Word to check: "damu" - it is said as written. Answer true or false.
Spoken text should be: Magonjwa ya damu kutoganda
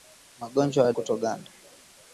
false